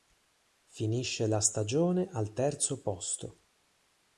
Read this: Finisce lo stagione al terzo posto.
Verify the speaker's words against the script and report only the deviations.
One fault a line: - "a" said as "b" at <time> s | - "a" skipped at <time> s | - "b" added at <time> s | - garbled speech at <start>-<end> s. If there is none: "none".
- "lo" said as "la" at 1.3 s